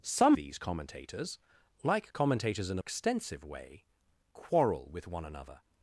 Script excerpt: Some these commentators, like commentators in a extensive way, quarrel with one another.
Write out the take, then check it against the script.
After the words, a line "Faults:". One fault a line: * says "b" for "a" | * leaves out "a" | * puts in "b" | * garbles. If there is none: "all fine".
Some these commentators, like commentators in a extensive way, quarrel with one another.
Faults:
all fine